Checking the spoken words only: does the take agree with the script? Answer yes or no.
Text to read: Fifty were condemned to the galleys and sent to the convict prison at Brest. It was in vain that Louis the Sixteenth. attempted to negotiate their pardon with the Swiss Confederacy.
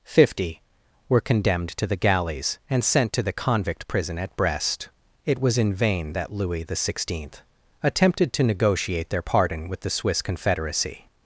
yes